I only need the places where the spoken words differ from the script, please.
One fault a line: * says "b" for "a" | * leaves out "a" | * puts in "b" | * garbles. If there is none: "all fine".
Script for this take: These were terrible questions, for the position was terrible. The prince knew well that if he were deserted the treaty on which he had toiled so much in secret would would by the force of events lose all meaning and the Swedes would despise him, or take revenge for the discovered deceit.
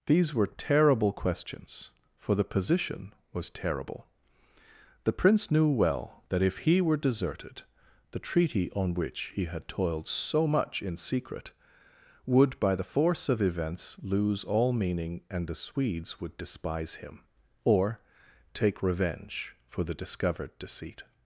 * leaves out "would"